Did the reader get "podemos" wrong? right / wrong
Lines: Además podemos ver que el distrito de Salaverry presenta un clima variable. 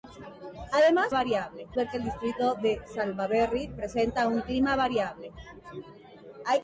wrong